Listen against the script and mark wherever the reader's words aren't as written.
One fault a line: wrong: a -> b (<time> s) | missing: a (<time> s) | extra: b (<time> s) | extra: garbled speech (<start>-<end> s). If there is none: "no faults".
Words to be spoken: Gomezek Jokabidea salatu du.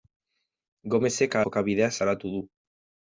no faults